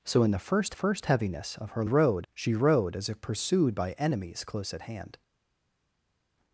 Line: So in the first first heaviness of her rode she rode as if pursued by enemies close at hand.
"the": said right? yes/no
yes